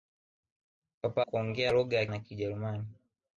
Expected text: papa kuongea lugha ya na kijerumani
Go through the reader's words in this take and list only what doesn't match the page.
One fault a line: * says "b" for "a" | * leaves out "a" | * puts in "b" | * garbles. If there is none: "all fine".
all fine